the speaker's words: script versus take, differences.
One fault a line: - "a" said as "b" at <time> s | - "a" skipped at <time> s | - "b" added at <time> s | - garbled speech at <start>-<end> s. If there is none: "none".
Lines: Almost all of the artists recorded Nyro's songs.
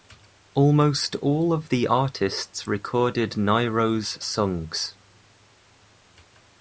none